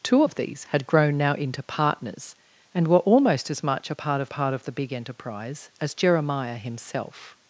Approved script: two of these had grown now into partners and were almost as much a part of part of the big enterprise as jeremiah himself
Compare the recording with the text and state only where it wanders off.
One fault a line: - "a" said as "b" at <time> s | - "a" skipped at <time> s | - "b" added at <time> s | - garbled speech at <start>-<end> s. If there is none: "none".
none